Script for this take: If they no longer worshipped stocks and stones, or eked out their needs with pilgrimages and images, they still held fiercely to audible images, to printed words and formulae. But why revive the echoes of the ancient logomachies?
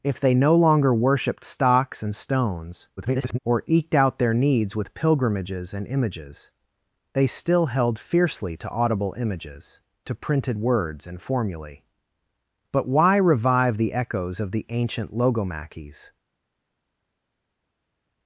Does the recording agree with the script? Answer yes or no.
no